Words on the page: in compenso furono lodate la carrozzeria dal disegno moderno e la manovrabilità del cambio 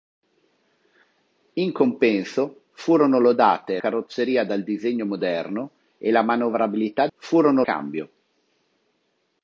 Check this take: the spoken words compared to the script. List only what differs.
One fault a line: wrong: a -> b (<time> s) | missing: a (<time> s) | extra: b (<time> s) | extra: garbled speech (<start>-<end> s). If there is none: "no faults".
missing: la (3.8 s)
wrong: del -> furono (7.2 s)